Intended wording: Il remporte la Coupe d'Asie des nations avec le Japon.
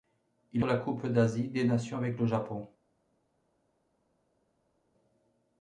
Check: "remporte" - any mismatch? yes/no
yes